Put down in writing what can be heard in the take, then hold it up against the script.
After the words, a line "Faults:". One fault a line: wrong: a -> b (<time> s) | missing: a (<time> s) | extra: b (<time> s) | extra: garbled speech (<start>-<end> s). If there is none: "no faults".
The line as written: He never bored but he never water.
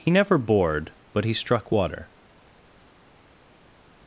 He never bored but he struck water.
Faults:
wrong: never -> struck (1.3 s)